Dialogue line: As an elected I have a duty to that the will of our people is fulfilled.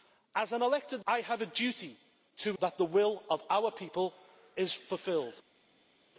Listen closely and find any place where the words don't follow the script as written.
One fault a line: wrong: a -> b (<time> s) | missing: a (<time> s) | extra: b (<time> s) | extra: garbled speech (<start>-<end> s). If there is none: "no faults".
no faults